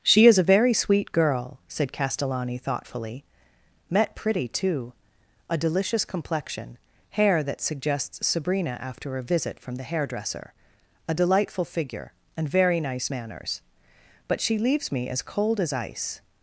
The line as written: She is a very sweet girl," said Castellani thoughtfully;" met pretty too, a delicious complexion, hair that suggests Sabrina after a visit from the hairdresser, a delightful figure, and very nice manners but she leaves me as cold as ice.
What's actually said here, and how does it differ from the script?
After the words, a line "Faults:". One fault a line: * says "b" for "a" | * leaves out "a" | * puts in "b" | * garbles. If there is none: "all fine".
She is a very sweet girl," said Castellani thoughtfully;" met pretty too, a delicious complexion, hair that suggests Sabrina after a visit from the hairdresser, a delightful figure, and very nice manners but she leaves me as cold as ice.
Faults:
all fine